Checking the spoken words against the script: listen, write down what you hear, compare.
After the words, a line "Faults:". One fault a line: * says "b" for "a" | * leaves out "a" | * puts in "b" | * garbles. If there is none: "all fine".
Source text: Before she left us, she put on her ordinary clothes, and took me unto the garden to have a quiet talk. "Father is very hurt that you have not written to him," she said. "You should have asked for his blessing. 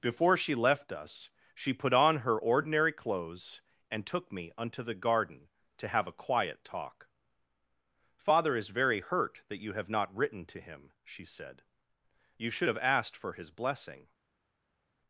Before she left us, she put on her ordinary clothes, and took me unto the garden to have a quiet talk. "Father is very hurt that you have not written to him," she said. "You should have asked for his blessing.
Faults:
all fine